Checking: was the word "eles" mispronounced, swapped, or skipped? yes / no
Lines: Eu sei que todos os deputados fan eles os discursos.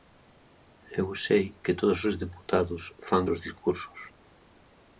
yes